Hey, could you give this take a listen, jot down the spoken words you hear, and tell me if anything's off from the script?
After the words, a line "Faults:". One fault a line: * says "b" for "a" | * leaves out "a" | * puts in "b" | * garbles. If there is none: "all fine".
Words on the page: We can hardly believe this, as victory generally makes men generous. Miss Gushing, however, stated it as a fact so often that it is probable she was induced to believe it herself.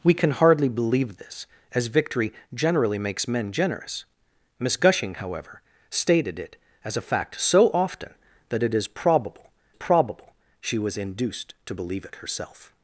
We can hardly believe this, as victory generally makes men generous. Miss Gushing, however, stated it as a fact so often that it is probable probable she was induced to believe it herself.
Faults:
* puts in "probable"